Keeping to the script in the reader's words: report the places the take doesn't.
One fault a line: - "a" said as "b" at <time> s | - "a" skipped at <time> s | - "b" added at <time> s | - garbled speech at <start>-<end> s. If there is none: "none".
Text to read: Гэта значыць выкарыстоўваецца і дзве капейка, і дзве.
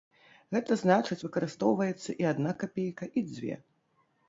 - "дзве" said as "адна" at 2.3 s